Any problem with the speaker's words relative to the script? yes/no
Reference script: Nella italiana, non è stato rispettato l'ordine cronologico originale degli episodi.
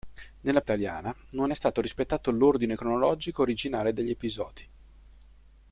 no